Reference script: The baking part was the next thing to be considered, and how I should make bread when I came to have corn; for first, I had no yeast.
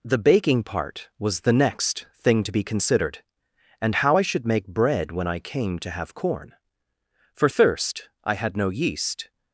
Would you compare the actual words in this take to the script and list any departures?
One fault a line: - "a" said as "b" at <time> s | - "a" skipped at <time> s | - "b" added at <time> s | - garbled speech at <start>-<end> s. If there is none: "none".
- "first" said as "thirst" at 7.5 s